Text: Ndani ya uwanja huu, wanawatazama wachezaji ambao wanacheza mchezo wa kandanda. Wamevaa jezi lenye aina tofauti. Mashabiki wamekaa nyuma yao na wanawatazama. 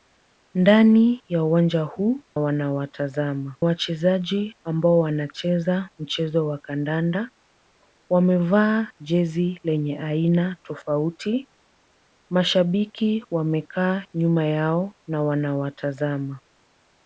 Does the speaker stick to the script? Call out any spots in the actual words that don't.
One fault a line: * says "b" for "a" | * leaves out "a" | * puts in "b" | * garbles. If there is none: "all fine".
all fine